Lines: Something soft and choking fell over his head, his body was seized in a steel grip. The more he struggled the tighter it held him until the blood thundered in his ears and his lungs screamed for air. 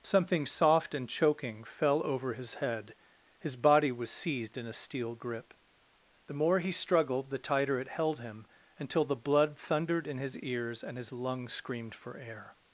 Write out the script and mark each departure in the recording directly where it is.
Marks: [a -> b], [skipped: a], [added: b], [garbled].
Something soft and choking fell over his head, his body was seized in a steel grip. The more he struggled the tighter it held him until the blood thundered in his ears and his lungs screamed for air.